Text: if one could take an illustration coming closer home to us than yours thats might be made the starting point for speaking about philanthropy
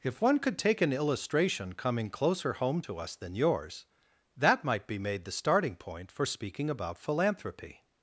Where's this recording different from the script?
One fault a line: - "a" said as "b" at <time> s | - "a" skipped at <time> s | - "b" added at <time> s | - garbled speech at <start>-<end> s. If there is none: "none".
- "thats" said as "that" at 4.4 s